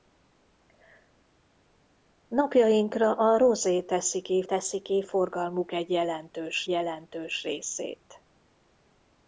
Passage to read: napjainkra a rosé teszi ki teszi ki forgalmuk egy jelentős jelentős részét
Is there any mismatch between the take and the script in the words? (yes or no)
no